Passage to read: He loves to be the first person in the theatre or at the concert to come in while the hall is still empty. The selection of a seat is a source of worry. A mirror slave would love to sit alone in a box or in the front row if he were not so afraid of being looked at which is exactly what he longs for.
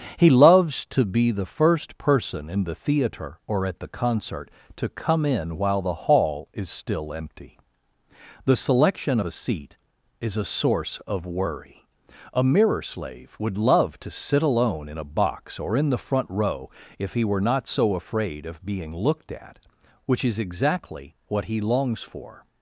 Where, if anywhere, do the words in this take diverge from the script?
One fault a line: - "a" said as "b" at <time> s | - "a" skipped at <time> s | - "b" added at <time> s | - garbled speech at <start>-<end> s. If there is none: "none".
- "of" skipped at 9.2 s